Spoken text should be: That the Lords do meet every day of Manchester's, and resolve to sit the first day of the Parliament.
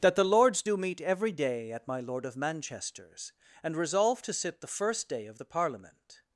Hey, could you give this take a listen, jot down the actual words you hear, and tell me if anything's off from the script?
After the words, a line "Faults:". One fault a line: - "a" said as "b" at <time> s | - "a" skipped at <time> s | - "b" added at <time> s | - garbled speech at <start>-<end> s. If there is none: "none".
That the Lords do meet every day at my Lord of Manchester's, and resolve to sit the first day of the Parliament.
Faults:
- "at my Lord" added at 1.7 s